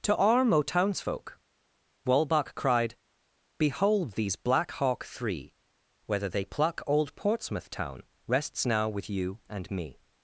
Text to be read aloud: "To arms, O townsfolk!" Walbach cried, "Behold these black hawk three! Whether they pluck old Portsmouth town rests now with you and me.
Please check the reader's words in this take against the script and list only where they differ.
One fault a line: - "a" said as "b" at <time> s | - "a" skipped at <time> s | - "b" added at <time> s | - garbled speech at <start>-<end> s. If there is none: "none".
- "arms" said as "arm" at 0.2 s